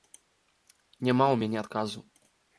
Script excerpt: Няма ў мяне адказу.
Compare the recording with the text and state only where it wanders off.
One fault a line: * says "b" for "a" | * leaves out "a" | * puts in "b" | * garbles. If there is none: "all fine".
all fine